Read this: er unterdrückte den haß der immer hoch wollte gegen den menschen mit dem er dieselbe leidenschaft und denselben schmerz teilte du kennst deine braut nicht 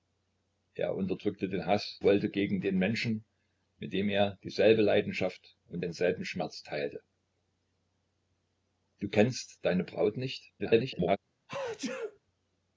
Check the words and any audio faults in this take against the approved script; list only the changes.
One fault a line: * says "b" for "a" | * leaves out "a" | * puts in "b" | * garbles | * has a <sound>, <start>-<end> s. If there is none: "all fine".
* leaves out "der immer hoch"
* garbles
* has a sneeze, 11.5-12.2 s